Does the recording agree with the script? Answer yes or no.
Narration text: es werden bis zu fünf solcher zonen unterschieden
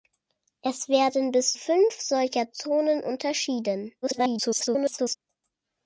no